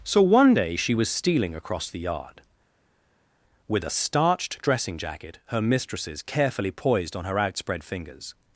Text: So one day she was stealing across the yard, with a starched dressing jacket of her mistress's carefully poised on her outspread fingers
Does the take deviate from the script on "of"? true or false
true